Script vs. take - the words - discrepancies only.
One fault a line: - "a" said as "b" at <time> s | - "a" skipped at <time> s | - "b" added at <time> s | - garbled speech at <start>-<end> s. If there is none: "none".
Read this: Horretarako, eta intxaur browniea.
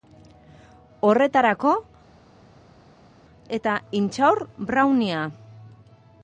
none